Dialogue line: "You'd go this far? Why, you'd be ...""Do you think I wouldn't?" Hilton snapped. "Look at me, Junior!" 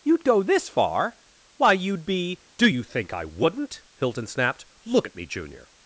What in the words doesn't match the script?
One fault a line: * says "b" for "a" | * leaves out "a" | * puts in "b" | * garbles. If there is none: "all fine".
all fine